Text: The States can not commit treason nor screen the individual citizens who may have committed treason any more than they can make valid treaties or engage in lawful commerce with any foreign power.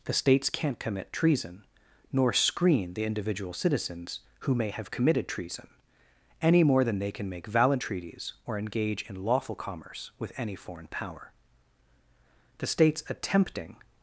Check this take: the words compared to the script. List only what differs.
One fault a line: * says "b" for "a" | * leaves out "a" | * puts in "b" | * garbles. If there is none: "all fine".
* puts in "The States attempting"